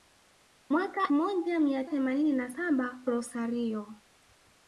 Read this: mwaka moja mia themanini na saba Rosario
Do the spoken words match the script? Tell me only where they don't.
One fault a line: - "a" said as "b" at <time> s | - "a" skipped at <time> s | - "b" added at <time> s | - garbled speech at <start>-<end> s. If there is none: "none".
none